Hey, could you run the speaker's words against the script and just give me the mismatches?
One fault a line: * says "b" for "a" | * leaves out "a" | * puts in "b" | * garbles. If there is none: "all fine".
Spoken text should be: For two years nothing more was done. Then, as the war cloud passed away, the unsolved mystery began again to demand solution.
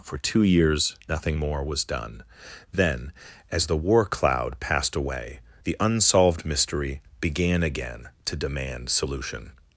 all fine